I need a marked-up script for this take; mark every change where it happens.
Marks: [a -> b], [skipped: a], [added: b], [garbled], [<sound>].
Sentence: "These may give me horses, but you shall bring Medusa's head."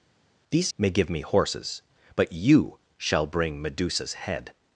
"These may give me horses, but you shall bring Medusa's head."